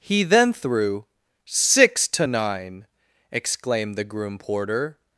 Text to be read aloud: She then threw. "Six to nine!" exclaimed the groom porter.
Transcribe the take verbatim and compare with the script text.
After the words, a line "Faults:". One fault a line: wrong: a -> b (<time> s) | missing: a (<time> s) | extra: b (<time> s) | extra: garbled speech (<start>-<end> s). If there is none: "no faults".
He then threw. "Six to nine!" exclaimed the groom porter.
Faults:
wrong: She -> He (0.0 s)